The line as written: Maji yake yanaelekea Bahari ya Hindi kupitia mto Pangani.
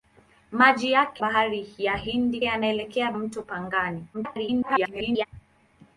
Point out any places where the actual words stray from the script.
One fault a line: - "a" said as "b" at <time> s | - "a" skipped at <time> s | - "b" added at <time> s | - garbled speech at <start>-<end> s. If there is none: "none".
- "yanaelekea" skipped at 1.2 s
- "kupitia" said as "yanaelekea" at 2.4 s
- garbled speech at 4.1-5.3 s